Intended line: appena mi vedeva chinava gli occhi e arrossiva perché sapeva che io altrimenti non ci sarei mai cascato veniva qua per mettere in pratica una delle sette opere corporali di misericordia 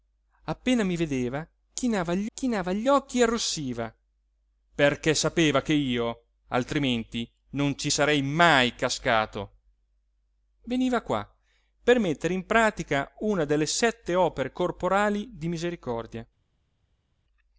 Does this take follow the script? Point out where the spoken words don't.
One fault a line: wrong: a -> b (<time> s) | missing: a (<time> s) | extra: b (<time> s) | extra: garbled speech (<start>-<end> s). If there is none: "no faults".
extra: chinava gli (2.3 s)